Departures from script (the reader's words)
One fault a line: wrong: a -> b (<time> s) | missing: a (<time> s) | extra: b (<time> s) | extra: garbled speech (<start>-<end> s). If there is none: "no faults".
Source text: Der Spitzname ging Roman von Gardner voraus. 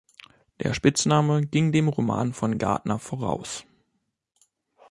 extra: dem (1.7 s)